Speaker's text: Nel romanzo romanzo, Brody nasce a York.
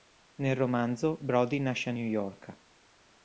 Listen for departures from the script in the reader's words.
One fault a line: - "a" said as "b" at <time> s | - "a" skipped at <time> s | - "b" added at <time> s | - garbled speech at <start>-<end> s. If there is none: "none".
- "romanzo" skipped at 1.2 s
- "New" added at 1.9 s